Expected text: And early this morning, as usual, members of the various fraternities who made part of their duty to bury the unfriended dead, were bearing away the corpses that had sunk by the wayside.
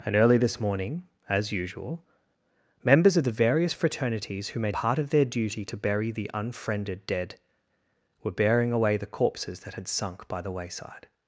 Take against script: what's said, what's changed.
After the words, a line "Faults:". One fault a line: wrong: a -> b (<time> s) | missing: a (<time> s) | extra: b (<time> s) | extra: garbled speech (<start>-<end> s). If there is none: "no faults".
And early this morning, as usual, members of the various fraternities who made part of their duty to bury the unfriended dead, were bearing away the corpses that had sunk by the wayside.
Faults:
no faults